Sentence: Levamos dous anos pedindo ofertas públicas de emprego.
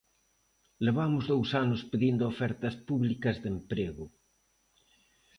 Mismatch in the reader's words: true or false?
false